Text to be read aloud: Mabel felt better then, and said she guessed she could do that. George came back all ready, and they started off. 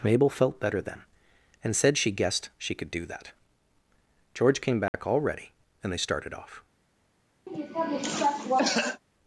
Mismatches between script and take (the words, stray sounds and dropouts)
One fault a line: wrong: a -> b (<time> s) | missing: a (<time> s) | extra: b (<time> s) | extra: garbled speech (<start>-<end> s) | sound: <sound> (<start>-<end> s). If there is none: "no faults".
sound: dropout (4.9-4.9 s)
sound: cough (7.5-9.0 s)